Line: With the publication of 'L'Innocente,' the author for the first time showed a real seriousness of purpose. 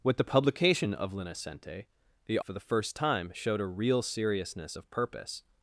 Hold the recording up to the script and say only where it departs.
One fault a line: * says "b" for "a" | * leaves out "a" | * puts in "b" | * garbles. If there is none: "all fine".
* leaves out "author"